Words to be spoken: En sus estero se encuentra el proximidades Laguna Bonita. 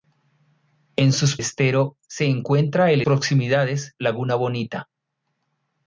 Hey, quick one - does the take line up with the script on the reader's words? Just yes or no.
yes